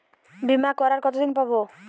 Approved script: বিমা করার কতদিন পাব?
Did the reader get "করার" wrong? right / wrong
right